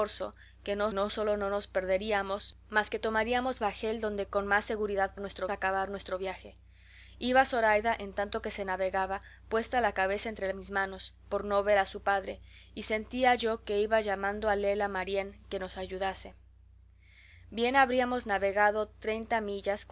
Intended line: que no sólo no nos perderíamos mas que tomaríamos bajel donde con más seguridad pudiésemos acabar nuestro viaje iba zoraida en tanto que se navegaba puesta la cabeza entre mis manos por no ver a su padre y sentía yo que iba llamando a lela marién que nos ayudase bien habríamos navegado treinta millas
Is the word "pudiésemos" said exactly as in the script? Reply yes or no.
no